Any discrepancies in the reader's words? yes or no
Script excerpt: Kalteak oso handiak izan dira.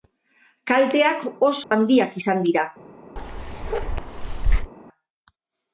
no